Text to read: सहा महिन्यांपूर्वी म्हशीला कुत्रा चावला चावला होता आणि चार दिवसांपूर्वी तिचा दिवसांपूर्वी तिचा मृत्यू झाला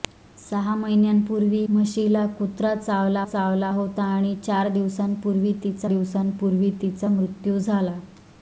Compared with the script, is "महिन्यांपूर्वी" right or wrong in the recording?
right